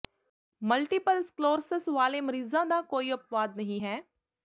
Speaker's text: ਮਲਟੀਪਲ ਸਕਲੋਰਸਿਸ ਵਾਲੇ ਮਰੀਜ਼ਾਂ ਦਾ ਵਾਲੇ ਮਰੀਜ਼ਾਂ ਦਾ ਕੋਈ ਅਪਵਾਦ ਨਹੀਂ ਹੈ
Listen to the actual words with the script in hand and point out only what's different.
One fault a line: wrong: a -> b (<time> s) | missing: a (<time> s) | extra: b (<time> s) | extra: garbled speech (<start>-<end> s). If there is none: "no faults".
missing: ਵਾਲੇ ਮਰੀਜ਼ਾਂ ਦਾ (2.8 s)